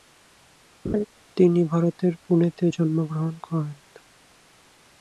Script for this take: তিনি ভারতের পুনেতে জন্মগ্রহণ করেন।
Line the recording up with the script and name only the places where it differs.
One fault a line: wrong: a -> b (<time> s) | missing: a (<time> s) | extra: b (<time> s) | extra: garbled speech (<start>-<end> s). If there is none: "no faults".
no faults